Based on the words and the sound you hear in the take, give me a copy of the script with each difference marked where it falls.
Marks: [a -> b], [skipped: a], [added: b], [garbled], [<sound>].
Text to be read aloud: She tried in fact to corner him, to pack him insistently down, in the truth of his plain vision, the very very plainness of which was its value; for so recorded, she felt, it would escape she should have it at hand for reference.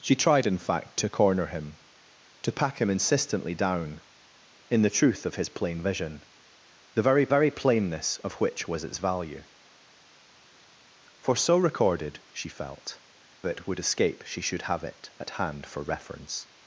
She tried in fact to corner him, to pack him insistently down, in the truth of his plain vision, the very very plainness of which was its value; for so recorded, she felt, it would escape she should have it at hand for reference.